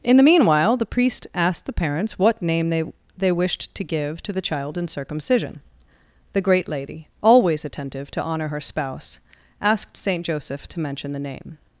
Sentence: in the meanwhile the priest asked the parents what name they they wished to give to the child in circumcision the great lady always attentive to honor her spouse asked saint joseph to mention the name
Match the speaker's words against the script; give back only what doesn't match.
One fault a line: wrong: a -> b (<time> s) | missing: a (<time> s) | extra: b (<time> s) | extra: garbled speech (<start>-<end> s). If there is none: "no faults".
no faults